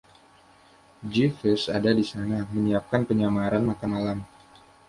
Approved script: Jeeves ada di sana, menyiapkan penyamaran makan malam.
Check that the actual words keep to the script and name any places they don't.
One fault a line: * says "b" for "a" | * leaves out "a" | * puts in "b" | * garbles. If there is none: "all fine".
all fine